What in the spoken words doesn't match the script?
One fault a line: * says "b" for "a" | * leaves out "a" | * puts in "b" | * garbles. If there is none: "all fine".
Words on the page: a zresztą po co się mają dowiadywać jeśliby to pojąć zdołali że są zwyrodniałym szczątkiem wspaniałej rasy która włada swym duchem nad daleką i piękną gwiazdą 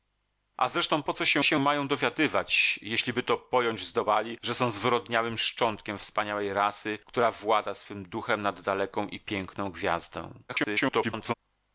* puts in "się"
* garbles